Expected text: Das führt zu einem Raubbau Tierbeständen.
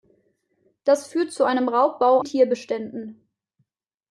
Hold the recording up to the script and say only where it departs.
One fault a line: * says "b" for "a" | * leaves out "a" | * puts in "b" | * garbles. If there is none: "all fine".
all fine